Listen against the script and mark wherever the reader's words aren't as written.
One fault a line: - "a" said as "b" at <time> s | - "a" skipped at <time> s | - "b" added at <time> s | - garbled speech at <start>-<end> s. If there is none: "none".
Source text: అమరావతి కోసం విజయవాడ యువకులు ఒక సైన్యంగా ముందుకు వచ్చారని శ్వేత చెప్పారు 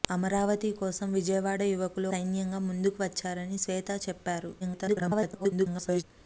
- "ఒక" skipped at 2.1 s
- garbled speech at 4.6-6.0 s